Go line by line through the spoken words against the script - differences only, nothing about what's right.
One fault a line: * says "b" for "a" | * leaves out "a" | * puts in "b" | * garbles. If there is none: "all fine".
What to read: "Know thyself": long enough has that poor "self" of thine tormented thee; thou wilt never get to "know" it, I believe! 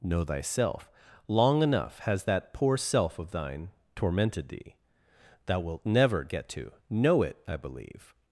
all fine